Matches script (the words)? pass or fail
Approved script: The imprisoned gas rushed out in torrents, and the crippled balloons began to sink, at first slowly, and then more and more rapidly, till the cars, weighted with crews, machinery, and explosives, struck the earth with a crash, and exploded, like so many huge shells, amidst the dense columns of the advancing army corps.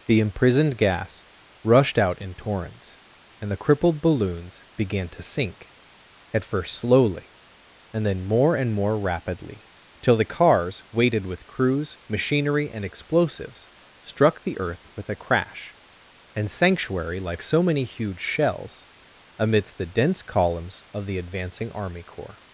fail